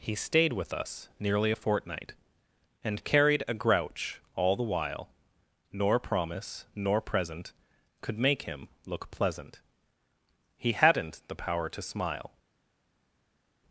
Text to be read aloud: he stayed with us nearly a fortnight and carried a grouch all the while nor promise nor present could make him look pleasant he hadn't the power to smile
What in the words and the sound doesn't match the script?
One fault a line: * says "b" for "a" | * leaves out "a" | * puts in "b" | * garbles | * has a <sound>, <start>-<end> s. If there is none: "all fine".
all fine